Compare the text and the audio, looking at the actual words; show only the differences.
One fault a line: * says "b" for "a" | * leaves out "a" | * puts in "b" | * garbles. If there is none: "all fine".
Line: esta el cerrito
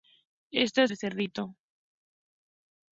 all fine